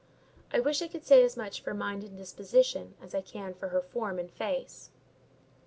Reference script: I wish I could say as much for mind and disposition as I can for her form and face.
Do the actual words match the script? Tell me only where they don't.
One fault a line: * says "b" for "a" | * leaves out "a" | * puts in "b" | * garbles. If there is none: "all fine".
all fine